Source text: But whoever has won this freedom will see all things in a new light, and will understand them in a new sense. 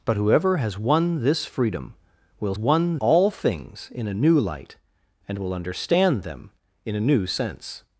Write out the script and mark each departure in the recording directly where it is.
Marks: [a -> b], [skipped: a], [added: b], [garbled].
But whoever has won this freedom will [see -> won] all things in a new light, and will understand them in a new sense.